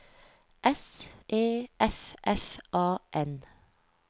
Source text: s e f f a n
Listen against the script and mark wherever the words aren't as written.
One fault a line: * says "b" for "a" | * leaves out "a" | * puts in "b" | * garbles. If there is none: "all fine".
all fine